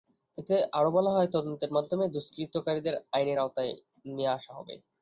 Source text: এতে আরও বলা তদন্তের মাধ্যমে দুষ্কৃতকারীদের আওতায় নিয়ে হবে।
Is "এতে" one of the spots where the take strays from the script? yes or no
no